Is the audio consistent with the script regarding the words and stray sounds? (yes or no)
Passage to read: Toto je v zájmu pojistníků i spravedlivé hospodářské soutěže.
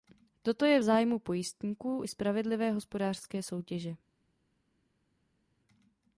yes